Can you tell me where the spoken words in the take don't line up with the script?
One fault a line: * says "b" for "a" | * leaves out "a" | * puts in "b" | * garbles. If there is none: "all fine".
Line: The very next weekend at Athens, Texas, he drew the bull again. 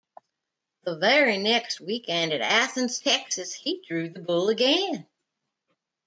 all fine